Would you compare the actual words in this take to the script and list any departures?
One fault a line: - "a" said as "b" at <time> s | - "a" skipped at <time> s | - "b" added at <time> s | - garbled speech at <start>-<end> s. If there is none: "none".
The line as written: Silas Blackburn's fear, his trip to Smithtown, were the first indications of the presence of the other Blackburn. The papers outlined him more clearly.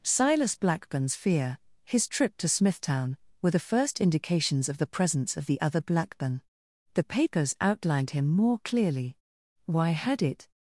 - "Why had it" added at 9.7 s